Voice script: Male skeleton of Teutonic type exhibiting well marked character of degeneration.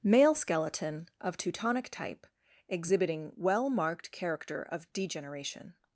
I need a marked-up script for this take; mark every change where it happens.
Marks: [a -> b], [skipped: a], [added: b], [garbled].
Male skeleton of Teutonic type exhibiting well marked character of degeneration.